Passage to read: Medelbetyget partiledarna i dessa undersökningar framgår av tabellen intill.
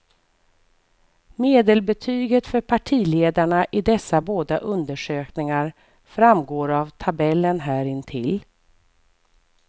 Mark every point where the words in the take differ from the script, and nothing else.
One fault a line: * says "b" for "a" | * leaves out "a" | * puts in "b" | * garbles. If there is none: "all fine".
* puts in "för"
* puts in "båda"
* puts in "här"